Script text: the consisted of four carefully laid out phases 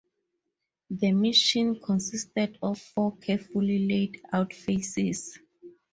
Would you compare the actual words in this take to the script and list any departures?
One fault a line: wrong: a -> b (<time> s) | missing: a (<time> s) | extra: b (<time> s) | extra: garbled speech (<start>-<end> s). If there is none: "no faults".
extra: mission (1.1 s)